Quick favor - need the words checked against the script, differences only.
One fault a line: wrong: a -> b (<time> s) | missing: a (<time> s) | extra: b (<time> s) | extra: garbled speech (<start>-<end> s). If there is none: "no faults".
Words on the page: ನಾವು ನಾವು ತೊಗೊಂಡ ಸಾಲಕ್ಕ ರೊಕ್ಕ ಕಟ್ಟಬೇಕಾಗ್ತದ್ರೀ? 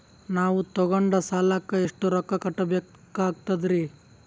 missing: ನಾವು (0.6 s)
extra: ಎಷ್ಟು (1.8 s)